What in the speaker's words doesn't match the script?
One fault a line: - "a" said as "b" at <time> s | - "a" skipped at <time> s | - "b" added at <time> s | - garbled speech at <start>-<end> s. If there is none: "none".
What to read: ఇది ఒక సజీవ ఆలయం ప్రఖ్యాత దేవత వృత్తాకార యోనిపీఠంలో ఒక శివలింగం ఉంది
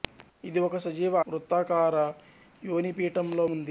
- "ఆలయం ప్రఖ్యాత దేవత" skipped at 1.1 s
- "ఒక శివలింగం" skipped at 3.5 s